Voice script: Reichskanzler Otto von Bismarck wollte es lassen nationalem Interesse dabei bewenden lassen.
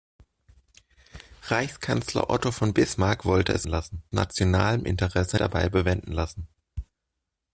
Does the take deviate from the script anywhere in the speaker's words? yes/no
no